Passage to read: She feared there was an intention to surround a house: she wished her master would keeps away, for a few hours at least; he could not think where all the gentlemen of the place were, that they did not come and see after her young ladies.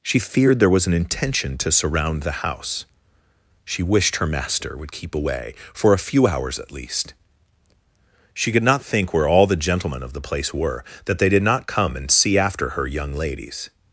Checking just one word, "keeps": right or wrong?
wrong